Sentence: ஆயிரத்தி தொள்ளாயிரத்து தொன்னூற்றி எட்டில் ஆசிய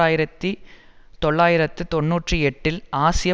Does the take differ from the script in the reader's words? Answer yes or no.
no